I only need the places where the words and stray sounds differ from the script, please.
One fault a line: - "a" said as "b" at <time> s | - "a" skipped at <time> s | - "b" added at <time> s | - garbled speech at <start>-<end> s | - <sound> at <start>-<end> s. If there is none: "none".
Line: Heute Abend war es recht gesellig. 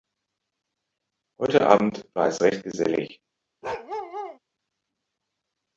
- bark at 3.6-4.4 s